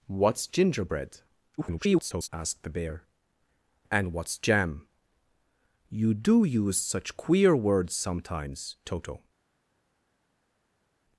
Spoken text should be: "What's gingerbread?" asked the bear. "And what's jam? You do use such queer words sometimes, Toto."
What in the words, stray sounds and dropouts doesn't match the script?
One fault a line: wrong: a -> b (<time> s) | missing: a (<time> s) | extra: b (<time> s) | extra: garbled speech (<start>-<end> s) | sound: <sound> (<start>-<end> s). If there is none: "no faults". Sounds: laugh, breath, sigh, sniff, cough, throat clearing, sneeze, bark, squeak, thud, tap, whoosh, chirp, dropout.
extra: garbled speech (1.6-2.3 s)